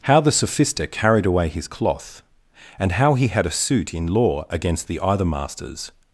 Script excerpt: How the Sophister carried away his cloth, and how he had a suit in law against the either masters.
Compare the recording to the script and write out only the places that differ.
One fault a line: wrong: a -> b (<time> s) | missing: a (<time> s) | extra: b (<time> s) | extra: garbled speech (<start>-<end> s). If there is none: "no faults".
no faults